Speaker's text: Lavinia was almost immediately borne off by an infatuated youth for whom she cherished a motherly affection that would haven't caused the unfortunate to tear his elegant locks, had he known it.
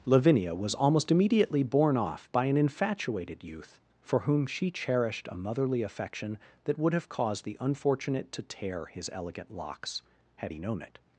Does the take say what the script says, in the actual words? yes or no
no